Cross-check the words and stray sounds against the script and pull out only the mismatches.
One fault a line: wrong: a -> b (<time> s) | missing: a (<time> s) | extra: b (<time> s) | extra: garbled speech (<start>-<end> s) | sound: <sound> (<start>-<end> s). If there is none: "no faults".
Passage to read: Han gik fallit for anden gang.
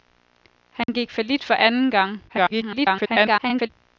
sound: dropout (0.8-0.9 s)
extra: garbled speech (2.3-3.7 s)